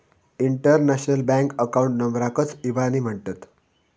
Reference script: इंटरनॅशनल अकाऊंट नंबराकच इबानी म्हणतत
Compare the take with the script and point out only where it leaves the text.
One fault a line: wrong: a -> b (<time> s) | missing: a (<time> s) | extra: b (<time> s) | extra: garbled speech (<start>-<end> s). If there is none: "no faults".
extra: बँक (1.3 s)